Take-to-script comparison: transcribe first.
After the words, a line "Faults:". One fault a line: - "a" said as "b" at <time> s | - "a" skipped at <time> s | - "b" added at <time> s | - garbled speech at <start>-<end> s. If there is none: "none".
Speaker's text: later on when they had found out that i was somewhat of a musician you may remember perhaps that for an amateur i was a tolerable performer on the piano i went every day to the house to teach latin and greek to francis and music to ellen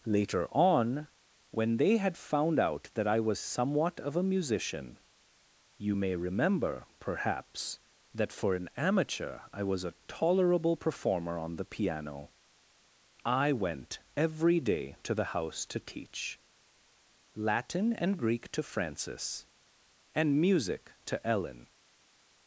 later on when they had found out that i was somewhat of a musician you may remember perhaps that for an amateur i was a tolerable performer on the piano i went every day to the house to teach latin and greek to francis and music to ellen
Faults:
none